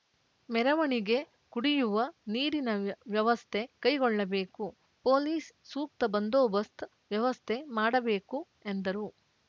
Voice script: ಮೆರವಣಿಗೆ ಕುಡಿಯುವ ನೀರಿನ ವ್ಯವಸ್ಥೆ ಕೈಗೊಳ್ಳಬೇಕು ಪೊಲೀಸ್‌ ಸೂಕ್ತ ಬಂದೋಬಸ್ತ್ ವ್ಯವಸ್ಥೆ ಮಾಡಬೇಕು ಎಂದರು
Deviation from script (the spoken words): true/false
false